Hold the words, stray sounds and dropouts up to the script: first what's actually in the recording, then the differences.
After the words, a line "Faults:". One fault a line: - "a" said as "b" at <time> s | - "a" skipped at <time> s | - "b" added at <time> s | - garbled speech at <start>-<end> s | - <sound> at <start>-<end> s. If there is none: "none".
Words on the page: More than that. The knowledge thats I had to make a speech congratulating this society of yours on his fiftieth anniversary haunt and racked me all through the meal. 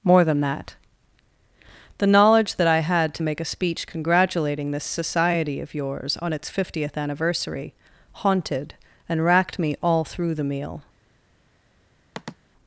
More than that. The knowledge that I had to make a speech congratulating this society of yours on its fiftieth anniversary haunted and racked me all through the meal.
Faults:
- "thats" said as "that" at 2.5 s
- "his" said as "its" at 6.3 s
- "haunt" said as "haunted" at 8.1 s
- sniff at 12.1-12.4 s